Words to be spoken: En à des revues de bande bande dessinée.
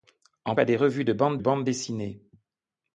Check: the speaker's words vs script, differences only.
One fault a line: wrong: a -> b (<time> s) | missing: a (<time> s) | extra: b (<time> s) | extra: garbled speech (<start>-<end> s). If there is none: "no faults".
no faults